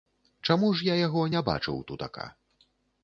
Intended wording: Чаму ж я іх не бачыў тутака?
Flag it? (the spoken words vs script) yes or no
yes